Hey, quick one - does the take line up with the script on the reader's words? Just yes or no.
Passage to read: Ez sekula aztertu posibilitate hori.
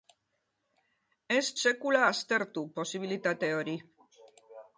yes